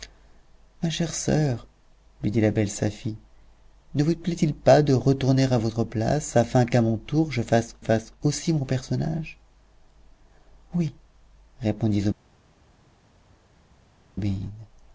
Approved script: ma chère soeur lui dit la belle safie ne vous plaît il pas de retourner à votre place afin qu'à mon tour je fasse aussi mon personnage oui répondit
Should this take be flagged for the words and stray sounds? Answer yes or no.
yes